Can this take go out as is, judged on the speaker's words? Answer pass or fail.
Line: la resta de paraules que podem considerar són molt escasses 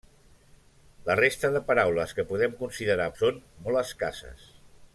pass